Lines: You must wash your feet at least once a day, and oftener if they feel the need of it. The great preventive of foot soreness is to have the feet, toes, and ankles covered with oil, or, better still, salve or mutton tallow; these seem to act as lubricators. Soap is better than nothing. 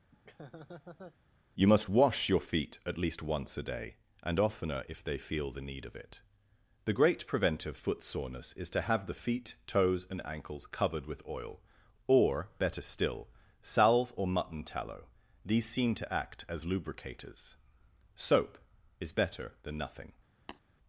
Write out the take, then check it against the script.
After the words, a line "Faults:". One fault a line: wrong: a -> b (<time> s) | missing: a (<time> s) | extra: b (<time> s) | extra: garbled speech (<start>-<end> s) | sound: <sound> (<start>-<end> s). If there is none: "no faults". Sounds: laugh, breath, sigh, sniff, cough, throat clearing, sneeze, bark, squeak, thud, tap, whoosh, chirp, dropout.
You must wash your feet at least once a day, and oftener if they feel the need of it. The great preventive foot soreness is to have the feet, toes, and ankles covered with oil, or, better still, salve or mutton tallow; these seem to act as lubricators. Soap is better than nothing.
Faults:
sound: laugh (0.1-1.2 s)
missing: of (7.8 s)
sound: tap (20.5-20.6 s)